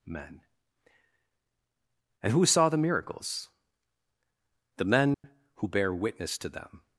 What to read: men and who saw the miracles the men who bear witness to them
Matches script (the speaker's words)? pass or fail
pass